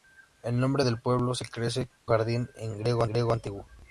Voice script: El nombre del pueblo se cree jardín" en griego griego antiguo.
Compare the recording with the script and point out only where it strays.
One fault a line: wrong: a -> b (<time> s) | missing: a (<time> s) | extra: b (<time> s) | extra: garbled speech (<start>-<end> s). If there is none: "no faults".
no faults